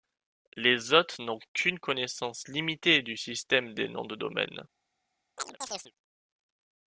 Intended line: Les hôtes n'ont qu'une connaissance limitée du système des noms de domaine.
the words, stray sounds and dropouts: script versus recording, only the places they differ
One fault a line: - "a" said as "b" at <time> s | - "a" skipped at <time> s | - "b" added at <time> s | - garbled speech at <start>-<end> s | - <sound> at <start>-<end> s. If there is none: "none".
- chirp at 5.4-5.9 s